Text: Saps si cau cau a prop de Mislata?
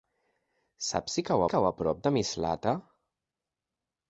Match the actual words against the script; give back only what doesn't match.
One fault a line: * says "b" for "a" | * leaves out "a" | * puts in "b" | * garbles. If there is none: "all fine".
all fine